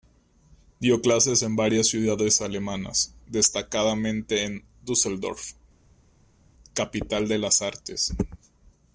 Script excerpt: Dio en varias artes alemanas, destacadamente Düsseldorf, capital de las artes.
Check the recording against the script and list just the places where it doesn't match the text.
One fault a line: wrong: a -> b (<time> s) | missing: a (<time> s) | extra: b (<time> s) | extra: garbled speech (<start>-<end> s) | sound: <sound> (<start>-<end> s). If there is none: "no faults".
extra: clases (1.0 s)
wrong: artes -> ciudades (1.9 s)
extra: en (4.5 s)